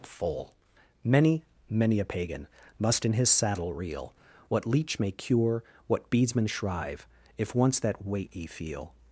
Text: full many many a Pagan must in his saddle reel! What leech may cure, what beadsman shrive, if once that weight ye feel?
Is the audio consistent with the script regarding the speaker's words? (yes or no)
yes